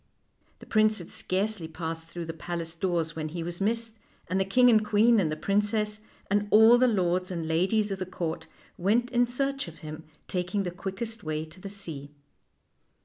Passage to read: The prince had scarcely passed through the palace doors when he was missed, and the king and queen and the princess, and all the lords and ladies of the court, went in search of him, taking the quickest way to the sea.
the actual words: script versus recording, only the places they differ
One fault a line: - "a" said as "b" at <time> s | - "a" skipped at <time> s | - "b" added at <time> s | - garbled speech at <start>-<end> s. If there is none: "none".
none